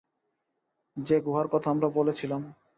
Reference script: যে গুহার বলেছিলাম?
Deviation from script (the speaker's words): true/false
true